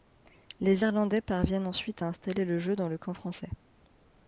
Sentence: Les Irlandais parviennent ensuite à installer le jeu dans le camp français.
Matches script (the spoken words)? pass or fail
pass